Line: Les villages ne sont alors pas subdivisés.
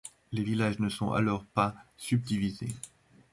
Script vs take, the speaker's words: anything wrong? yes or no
no